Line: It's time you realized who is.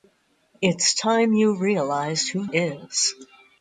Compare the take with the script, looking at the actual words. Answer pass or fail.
pass